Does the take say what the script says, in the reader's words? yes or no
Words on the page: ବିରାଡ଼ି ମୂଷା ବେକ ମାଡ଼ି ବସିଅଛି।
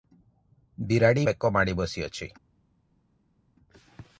no